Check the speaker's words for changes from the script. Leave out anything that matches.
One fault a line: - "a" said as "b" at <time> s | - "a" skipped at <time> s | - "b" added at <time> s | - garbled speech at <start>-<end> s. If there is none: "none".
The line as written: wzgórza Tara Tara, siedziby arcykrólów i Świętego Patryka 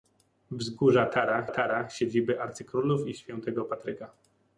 none